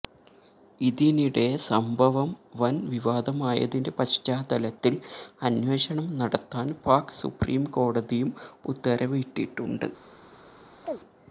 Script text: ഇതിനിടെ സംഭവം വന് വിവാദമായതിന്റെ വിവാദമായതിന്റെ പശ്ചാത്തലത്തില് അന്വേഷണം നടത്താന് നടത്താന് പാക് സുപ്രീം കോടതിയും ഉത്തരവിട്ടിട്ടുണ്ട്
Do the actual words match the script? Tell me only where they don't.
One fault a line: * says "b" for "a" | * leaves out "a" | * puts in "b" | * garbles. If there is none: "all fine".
* leaves out "വിവാദമായതിന്റെ"
* leaves out "നടത്താന്"